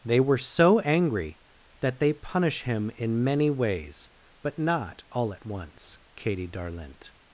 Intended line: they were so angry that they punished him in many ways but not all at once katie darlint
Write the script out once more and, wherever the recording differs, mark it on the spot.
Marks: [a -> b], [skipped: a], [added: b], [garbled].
they were so angry that they [punished -> punish] him in many ways but not all at once katie darlint